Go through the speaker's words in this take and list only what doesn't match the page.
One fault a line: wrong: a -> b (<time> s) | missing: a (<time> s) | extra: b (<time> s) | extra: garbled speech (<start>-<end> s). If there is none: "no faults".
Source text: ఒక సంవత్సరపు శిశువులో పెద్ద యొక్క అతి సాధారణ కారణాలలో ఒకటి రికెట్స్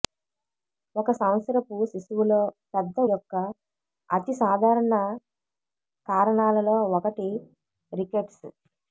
no faults